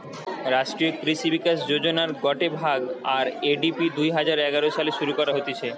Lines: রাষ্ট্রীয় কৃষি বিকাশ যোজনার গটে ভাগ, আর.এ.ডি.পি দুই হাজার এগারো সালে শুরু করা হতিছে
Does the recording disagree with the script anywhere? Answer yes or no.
no